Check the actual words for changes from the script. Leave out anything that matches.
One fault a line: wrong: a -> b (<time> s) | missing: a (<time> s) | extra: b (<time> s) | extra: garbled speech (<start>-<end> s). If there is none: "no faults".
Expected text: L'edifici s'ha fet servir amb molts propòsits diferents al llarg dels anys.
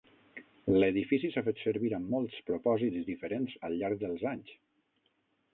no faults